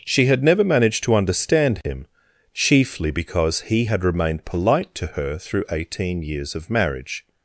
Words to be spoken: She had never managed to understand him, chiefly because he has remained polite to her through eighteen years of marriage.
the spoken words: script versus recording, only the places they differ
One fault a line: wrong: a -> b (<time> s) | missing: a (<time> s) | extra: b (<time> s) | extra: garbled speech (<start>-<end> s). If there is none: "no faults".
wrong: has -> had (3.8 s)